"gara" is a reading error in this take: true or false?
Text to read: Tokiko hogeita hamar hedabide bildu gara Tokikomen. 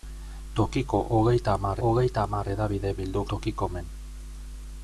true